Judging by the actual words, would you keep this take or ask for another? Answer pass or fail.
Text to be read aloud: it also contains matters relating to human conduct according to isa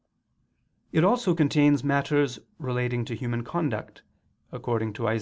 pass